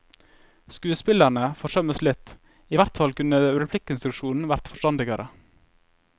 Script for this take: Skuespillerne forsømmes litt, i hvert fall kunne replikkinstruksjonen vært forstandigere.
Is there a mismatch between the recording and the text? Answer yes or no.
no